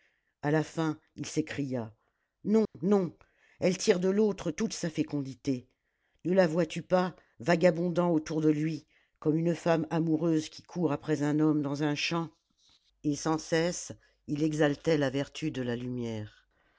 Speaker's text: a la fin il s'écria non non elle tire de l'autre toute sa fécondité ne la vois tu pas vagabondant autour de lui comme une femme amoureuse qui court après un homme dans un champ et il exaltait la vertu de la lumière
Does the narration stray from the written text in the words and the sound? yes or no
yes